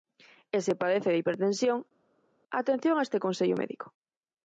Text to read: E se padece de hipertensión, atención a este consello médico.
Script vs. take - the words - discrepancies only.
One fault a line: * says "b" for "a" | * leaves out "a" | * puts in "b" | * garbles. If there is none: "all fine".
all fine